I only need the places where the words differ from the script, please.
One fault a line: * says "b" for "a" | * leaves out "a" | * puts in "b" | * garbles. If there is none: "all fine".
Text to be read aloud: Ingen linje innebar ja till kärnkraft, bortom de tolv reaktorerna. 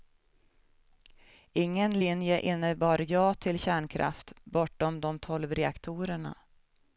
all fine